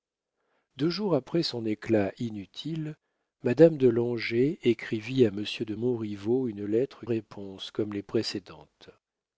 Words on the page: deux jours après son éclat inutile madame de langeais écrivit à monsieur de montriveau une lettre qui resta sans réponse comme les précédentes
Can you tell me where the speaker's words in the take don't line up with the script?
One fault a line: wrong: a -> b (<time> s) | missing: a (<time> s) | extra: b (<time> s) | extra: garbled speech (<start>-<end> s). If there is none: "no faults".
missing: qui resta sans (7.0 s)